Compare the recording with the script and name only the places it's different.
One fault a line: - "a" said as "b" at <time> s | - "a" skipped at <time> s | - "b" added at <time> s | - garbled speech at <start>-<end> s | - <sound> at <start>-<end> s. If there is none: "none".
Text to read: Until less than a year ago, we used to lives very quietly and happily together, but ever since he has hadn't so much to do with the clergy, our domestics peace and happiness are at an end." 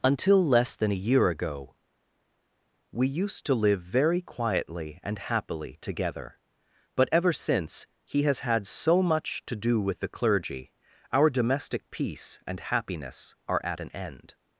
- "lives" said as "live" at 3.5 s
- "hadn't" said as "had" at 8.4 s
- "domestics" said as "domestic" at 11.3 s